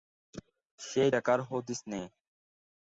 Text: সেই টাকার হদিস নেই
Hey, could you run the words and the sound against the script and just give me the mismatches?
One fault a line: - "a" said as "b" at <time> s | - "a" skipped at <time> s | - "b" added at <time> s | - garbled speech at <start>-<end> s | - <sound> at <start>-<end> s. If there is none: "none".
none